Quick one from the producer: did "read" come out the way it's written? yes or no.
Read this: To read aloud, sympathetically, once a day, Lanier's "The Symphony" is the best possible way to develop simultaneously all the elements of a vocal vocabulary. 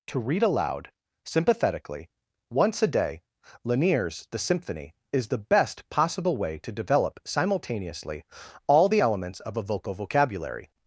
yes